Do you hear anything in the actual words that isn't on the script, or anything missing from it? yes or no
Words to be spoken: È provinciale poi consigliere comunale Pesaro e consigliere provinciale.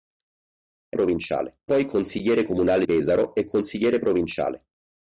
no